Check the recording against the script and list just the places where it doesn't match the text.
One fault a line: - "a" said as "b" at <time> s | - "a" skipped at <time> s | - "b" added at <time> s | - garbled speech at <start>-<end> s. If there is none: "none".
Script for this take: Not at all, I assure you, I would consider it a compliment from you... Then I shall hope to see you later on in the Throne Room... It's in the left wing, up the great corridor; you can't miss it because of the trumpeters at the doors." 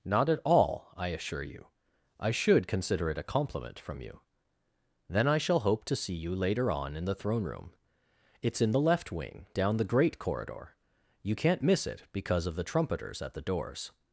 - "would" said as "should" at 2.3 s
- "up" said as "down" at 9.5 s